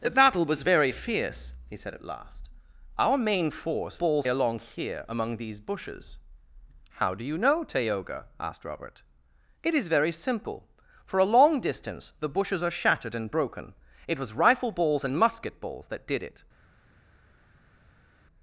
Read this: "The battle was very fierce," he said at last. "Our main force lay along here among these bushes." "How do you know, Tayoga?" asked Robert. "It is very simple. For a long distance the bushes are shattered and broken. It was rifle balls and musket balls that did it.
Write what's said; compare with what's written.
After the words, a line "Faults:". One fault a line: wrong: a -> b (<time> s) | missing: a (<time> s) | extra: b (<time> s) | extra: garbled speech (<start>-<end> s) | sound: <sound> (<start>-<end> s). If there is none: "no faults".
"The battle was very fierce," he said at last. "Our main force balls along here among these bushes." "How do you know, Tayoga?" asked Robert. "It is very simple. For a long distance the bushes are shattered and broken. It was rifle balls and musket balls that did it.
Faults:
wrong: lay -> balls (4.0 s)